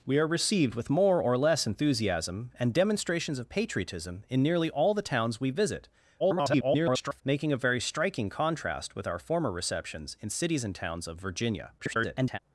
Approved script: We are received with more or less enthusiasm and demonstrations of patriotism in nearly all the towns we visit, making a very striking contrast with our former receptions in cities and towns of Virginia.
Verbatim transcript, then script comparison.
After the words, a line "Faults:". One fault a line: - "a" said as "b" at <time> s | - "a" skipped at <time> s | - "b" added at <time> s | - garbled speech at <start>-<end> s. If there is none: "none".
We are received with more or less enthusiasm and demonstrations of patriotism in nearly all the towns we visit, [garbled] making a very striking contrast with our former receptions in cities and towns of Virginia. [garbled]
Faults:
- garbled speech at 6.2-7.2 s
- garbled speech at 11.8-12.4 s